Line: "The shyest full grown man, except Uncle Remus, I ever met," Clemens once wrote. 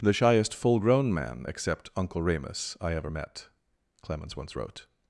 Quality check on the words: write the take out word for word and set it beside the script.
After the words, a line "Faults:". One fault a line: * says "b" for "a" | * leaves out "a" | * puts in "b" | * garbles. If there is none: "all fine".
"The shyest full grown man, except Uncle Remus, I ever met," Clemens once wrote.
Faults:
all fine